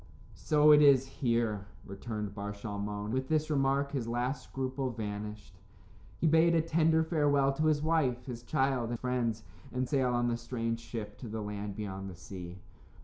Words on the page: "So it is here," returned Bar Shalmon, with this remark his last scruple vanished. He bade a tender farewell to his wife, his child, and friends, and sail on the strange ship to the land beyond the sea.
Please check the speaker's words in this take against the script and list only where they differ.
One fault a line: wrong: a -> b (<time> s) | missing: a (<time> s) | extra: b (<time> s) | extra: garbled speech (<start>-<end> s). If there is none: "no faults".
no faults